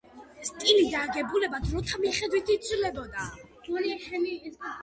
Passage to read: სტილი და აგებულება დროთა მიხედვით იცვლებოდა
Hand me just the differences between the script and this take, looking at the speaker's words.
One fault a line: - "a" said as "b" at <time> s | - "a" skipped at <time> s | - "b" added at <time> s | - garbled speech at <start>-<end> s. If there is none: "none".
none